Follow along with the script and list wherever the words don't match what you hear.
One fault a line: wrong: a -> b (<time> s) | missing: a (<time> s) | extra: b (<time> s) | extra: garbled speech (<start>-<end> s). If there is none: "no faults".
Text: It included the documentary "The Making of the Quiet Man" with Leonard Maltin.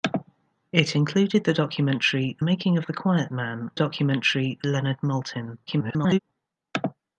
missing: The (2.4 s)
wrong: with -> documentary (3.7 s)
extra: garbled speech (5.7-6.2 s)